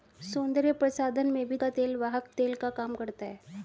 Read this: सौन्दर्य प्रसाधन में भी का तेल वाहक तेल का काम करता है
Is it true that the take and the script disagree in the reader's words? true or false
false